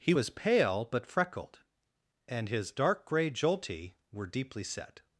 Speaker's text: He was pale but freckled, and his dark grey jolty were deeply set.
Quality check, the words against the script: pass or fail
pass